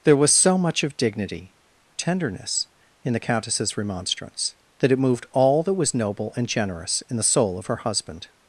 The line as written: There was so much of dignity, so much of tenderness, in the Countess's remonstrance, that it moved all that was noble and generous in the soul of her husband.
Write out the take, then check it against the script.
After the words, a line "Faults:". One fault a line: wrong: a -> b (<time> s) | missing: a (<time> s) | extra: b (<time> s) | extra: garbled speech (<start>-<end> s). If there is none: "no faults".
There was so much of dignity, tenderness, in the Countess's remonstrance, that it moved all that was noble and generous in the soul of her husband.
Faults:
missing: so much of (1.5 s)